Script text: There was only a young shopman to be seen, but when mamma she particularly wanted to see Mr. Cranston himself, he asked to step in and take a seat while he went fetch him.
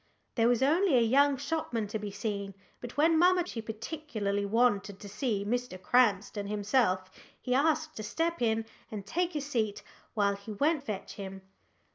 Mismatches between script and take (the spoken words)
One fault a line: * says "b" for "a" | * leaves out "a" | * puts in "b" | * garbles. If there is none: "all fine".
all fine